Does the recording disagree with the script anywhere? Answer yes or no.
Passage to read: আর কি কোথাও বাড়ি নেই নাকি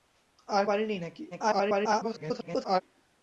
yes